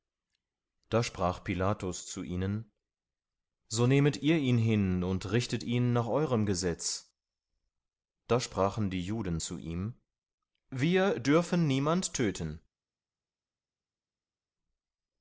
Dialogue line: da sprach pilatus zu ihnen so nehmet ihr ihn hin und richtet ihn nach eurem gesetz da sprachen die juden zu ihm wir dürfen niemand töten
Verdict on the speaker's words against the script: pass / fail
pass